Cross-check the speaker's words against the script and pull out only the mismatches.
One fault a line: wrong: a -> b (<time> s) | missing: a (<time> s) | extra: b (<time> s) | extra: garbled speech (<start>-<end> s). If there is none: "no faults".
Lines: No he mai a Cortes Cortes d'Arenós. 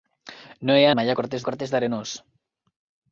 no faults